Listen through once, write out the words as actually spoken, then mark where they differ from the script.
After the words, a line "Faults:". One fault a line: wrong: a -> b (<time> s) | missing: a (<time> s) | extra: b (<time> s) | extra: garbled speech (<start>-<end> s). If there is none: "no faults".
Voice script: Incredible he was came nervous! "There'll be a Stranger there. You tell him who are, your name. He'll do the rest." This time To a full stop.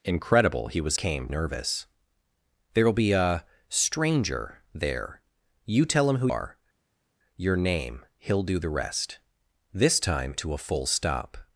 Incredible he was came nervous! "There'll be a Stranger there. You tell him who are, your name. He'll do the rest." This time To a full stop.
Faults:
no faults